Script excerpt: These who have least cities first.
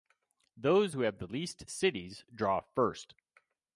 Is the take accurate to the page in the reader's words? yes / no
no